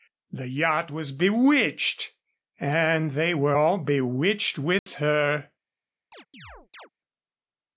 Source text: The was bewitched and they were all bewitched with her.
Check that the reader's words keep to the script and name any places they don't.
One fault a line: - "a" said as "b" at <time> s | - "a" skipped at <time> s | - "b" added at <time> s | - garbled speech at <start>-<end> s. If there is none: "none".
- "yacht" added at 0.5 s